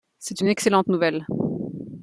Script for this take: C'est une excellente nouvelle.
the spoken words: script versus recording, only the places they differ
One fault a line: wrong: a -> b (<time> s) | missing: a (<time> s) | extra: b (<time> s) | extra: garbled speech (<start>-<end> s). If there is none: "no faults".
no faults